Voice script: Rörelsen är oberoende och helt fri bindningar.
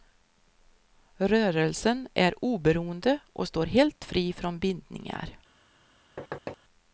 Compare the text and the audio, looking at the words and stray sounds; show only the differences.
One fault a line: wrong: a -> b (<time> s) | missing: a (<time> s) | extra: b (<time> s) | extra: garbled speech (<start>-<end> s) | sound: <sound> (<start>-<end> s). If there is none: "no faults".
extra: står (3.5 s)
extra: från (4.3 s)
sound: thud (6.2-6.6 s)